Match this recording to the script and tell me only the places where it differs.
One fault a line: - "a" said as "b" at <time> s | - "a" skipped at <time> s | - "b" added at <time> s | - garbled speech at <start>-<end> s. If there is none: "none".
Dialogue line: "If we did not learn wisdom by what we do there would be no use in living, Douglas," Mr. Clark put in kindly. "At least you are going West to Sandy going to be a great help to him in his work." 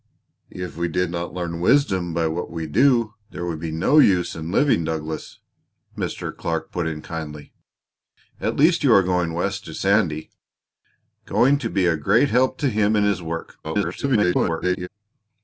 - garbled speech at 13.6-14.9 s